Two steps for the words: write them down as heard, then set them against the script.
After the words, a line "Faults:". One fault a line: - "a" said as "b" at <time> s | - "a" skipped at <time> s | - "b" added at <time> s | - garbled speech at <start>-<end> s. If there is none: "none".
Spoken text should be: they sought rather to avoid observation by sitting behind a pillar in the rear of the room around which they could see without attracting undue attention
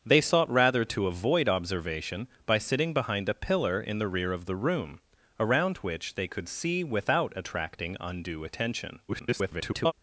they sought rather to avoid observation by sitting behind a pillar in the rear of the room around which they could see without attracting undue attention [garbled]
Faults:
- garbled speech at 9.1-9.9 s